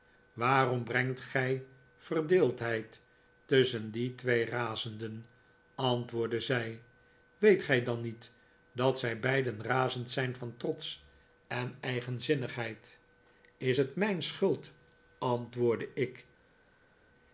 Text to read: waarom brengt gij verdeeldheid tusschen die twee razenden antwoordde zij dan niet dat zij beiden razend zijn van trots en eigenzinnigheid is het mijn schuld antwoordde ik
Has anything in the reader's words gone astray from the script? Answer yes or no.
yes